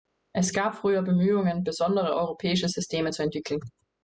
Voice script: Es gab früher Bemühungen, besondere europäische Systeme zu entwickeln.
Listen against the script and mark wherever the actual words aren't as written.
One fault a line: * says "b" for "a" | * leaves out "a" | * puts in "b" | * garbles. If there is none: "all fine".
all fine